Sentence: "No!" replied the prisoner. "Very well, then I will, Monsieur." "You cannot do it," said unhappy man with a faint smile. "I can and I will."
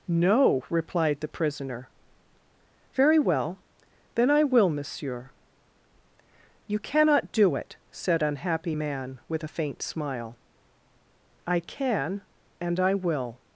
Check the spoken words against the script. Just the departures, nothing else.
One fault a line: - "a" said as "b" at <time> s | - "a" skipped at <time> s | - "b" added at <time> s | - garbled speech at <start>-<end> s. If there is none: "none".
none